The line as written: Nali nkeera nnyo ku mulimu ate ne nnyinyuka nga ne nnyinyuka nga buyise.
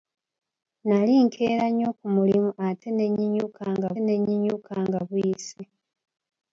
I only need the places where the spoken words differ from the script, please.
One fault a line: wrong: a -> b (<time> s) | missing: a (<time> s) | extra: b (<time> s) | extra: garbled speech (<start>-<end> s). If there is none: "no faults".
no faults